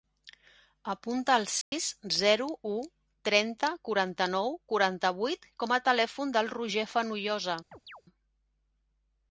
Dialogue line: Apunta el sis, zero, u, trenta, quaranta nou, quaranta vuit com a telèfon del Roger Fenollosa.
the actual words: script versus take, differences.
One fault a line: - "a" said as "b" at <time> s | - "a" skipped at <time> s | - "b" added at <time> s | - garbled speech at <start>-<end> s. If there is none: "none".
none